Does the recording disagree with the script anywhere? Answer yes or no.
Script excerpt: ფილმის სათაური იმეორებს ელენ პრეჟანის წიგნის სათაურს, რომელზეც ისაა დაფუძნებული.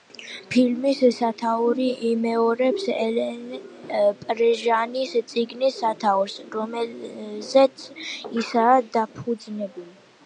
no